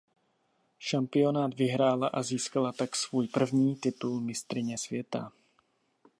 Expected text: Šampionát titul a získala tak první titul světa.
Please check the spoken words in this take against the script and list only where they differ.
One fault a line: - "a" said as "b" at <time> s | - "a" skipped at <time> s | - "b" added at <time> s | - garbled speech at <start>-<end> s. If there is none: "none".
- "titul" said as "vyhrála" at 1.5 s
- "svůj" added at 2.9 s
- "mistryně" added at 4.2 s